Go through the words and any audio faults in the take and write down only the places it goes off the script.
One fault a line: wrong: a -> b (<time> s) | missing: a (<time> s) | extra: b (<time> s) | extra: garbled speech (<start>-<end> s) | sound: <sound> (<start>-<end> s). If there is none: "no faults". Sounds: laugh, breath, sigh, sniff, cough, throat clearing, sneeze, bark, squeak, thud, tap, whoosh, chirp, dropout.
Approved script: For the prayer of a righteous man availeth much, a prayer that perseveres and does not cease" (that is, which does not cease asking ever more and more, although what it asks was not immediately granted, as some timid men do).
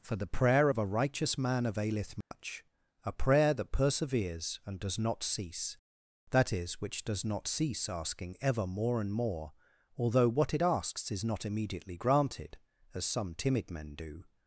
sound: dropout (2.2-2.3 s)
wrong: was -> is (11.1 s)